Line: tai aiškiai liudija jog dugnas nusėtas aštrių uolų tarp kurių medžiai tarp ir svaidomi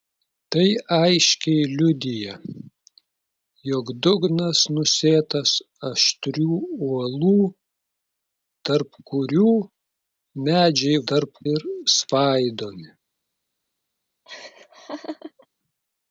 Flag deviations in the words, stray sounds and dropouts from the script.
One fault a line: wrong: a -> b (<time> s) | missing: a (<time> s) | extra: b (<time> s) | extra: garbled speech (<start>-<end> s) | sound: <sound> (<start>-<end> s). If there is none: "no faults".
sound: laugh (14.3-15.5 s)